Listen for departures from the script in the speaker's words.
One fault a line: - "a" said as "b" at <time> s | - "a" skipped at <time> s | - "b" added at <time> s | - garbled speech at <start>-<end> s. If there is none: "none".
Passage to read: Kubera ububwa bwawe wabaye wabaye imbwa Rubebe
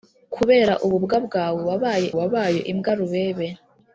none